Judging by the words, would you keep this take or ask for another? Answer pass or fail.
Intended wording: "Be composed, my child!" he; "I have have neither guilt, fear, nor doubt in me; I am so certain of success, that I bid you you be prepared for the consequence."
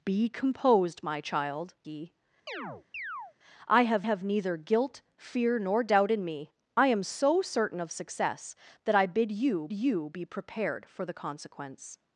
pass